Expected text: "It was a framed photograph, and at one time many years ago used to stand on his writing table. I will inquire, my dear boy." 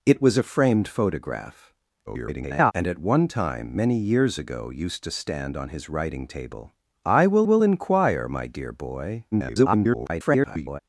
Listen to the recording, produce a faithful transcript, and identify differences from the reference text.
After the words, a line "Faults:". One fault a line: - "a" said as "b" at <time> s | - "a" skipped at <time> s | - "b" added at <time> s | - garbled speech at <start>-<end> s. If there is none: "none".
"It was a framed photograph, [garbled] and at one time many years ago used to stand on his writing table. I will will inquire, my dear boy." [garbled]
Faults:
- garbled speech at 2.1-2.7 s
- "will" added at 7.4 s
- garbled speech at 9.3-10.8 s